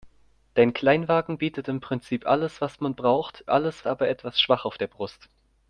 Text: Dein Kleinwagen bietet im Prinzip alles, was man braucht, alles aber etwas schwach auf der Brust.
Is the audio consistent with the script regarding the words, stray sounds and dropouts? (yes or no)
yes